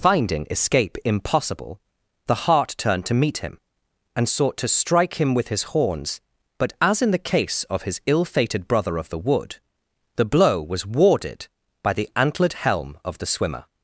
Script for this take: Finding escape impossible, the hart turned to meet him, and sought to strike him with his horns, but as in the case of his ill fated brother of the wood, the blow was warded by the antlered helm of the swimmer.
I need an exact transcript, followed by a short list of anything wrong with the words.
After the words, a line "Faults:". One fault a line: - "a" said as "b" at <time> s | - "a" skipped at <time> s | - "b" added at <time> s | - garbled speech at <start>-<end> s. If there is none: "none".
Finding escape impossible, the hart turned to meet him, and sought to strike him with his horns, but as in the case of his ill fated brother of the wood, the blow was warded by the antlered helm of the swimmer.
Faults:
none